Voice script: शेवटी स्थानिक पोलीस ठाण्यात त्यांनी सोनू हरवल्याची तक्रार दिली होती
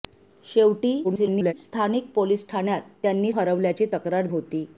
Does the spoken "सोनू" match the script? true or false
false